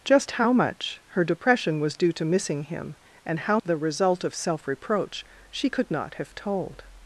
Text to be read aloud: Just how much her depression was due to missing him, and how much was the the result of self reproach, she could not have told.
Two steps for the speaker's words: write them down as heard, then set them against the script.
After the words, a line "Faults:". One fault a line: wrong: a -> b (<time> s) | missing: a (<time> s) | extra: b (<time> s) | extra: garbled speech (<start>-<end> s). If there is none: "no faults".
Just how much her depression was due to missing him, and how the result of self reproach, she could not have told.
Faults:
missing: much was the (3.6 s)